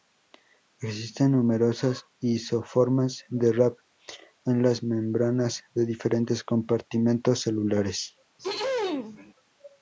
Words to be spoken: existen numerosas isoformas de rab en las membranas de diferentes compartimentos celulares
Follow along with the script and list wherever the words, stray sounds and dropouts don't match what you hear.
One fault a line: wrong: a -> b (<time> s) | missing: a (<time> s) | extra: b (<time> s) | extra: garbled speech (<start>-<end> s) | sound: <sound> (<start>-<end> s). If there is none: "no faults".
sound: throat clearing (8.4-9.3 s)